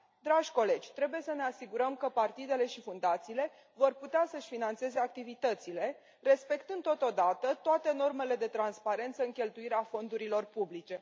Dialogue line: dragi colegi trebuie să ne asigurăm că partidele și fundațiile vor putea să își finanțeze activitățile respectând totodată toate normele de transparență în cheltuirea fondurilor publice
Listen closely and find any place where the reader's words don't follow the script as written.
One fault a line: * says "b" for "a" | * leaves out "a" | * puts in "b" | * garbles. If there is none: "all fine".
all fine